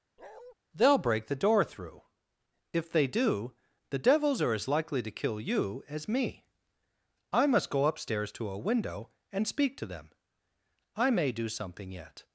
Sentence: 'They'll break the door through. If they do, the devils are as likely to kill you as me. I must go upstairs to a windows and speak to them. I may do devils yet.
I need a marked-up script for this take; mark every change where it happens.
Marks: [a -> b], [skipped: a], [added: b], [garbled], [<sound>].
[bark] 'They'll break the door through. If they do, the devils are as likely to kill you as me. I must go upstairs to a [windows -> window] and speak to them. I may do [devils -> something] yet.